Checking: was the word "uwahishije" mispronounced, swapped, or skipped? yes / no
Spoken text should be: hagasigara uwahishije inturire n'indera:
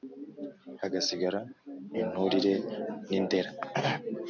yes